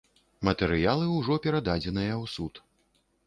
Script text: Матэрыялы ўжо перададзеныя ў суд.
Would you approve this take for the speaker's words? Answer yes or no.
yes